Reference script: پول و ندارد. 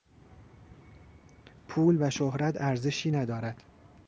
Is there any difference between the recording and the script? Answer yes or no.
yes